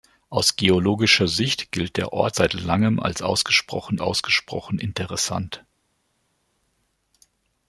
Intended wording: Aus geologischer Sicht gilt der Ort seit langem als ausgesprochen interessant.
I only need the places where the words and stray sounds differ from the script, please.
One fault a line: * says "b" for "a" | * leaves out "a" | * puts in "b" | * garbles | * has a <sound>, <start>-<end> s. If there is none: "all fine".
* puts in "ausgesprochen"